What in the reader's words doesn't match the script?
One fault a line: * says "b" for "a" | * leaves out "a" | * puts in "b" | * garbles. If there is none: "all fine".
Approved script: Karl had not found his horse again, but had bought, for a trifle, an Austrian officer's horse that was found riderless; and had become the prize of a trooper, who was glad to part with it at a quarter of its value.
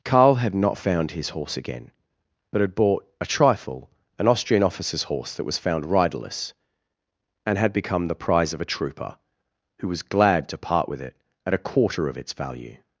* leaves out "for"